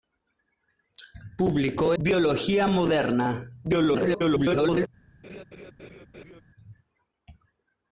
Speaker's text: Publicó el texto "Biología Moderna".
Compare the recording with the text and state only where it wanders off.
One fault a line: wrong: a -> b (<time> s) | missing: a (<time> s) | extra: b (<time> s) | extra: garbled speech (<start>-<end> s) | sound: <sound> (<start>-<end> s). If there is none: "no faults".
missing: el texto (1.9 s)
extra: garbled speech (3.6-4.9 s)
sound: laugh (5.2-6.4 s)